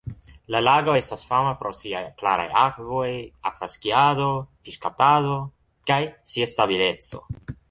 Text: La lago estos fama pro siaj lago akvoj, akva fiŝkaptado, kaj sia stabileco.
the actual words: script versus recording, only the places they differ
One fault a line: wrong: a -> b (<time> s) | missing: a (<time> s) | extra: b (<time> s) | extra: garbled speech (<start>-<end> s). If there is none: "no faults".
wrong: estos -> estas (1.0 s)
wrong: lago -> klaraj (2.2 s)
extra: skiado (3.7 s)